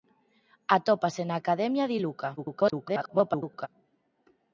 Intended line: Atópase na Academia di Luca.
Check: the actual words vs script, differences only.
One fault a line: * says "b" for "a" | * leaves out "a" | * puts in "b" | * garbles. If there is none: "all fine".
* garbles